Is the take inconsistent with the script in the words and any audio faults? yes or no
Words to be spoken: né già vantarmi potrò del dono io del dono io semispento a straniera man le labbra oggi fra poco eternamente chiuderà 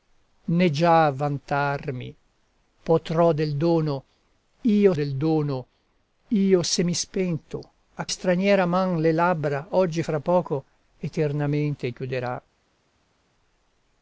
no